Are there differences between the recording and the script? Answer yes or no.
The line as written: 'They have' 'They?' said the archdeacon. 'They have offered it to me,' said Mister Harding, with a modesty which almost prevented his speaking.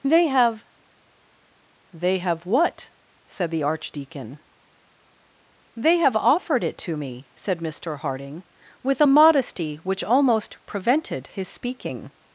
yes